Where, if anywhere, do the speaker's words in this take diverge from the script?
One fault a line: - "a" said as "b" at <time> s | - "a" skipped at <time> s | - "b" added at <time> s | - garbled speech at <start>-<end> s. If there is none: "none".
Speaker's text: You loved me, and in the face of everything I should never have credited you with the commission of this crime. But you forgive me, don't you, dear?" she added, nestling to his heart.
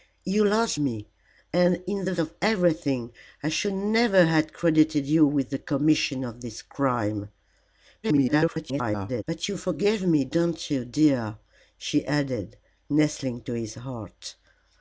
- "face" skipped at 2.1 s
- garbled speech at 8.0-9.2 s